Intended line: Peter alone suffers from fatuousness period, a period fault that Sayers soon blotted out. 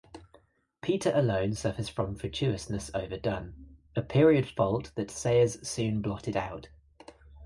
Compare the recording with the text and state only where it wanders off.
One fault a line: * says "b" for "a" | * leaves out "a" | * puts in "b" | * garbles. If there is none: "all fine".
* says "overdone" for "period"